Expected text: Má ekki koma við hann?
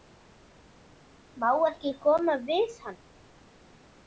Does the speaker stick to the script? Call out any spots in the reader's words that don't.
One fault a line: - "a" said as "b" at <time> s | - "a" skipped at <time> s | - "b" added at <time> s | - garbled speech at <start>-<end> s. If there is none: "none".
none